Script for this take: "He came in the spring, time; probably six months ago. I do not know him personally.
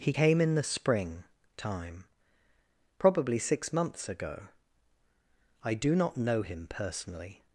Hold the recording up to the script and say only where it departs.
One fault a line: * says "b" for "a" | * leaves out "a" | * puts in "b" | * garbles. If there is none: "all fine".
all fine